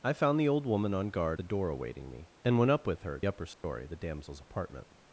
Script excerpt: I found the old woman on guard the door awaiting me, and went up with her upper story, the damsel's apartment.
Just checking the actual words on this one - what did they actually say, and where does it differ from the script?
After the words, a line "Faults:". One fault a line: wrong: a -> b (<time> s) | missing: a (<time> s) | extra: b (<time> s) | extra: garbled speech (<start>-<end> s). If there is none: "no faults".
I found the old woman on guard the door awaiting me, and went up with her upper story, the damsel's apartment.
Faults:
no faults